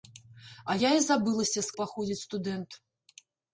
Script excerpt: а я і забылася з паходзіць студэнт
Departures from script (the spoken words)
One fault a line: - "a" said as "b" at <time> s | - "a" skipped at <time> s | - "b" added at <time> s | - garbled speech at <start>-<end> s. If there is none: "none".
none